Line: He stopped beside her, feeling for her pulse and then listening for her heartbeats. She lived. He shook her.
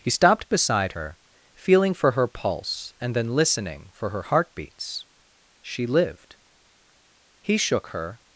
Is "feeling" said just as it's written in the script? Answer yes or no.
yes